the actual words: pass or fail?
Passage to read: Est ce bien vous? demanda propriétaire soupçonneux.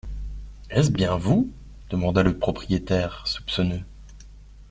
fail